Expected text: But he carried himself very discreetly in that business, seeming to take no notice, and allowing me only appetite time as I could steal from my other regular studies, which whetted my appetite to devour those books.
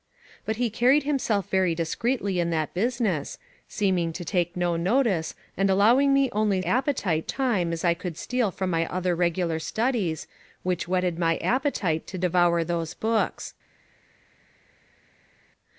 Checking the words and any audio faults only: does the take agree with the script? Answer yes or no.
yes